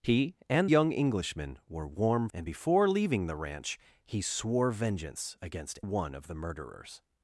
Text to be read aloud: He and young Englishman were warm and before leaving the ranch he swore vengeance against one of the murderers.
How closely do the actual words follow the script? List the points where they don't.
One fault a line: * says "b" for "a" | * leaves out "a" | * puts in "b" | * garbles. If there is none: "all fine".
all fine